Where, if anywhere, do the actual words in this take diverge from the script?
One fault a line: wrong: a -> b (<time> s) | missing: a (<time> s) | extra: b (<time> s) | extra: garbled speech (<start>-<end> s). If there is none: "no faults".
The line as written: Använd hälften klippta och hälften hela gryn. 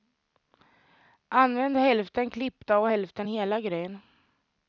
no faults